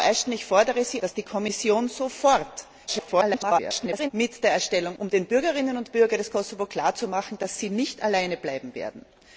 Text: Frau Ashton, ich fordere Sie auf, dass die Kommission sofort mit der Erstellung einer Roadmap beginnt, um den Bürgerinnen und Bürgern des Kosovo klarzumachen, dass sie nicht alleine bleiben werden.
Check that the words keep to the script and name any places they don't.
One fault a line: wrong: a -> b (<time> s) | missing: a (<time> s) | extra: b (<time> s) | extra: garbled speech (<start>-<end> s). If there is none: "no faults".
missing: auf (1.0 s)
extra: garbled speech (2.9-4.1 s)
missing: einer Roadmap beginnt (5.0 s)